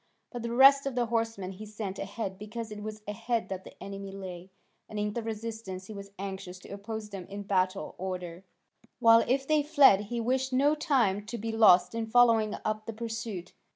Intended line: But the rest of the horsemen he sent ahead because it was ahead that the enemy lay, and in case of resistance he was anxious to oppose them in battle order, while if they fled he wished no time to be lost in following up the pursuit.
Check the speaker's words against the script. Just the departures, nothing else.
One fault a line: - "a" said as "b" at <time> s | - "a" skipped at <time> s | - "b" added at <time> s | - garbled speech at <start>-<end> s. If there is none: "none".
- "case" skipped at 5.1 s